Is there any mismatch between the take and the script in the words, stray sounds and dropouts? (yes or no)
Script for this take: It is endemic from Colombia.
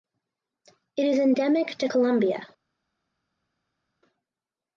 yes